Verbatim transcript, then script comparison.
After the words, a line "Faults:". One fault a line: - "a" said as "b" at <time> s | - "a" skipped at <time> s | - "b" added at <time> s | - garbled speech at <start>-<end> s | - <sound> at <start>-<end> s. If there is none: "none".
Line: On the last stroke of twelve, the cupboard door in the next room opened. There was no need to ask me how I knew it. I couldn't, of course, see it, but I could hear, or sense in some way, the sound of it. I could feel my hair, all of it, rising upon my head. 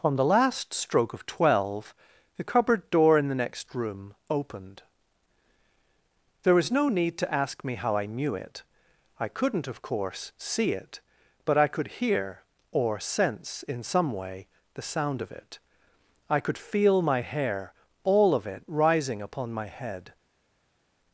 On the last stroke of twelve, the cupboard door in the next room opened. There was no need to ask me how I knew it. I couldn't, of course, see it, but I could hear, or sense in some way, the sound of it. I could feel my hair, all of it, rising upon my head.
Faults:
none